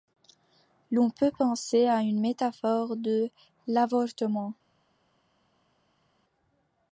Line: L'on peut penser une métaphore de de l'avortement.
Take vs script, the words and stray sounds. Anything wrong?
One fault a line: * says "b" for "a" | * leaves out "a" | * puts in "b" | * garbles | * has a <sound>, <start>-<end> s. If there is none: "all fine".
* puts in "à"
* leaves out "de"